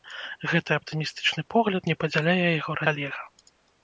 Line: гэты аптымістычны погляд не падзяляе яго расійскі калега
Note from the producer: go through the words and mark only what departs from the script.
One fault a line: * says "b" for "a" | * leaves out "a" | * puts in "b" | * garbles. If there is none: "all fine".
* leaves out "расійскі"